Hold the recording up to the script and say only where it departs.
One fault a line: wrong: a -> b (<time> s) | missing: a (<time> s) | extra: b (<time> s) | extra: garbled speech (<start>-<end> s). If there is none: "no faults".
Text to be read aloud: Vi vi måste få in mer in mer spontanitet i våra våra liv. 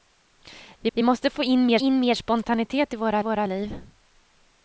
no faults